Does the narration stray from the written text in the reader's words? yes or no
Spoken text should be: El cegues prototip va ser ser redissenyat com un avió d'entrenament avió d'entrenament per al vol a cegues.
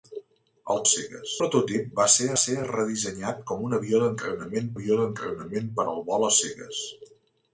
no